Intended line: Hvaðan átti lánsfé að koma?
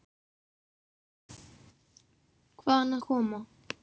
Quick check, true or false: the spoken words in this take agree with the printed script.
false